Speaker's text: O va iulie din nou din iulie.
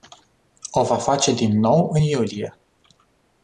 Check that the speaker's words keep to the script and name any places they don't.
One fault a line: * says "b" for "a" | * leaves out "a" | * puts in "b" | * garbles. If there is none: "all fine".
* says "face" for "iulie"
* says "în" for "din"